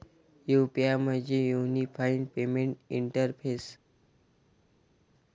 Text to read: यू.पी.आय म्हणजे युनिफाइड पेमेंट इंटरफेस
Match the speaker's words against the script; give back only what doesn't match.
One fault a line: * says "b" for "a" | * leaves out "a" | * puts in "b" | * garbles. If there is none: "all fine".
all fine